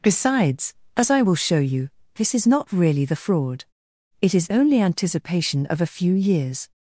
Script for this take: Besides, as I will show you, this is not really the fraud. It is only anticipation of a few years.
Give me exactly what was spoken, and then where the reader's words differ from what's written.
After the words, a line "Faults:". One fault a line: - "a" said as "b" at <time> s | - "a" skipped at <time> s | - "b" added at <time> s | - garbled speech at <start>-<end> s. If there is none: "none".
Besides, as I will show you, this is not really the fraud. It is only anticipation of a few years.
Faults:
none